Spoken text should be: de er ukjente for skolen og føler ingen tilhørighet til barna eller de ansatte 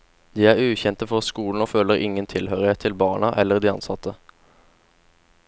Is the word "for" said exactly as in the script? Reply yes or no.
yes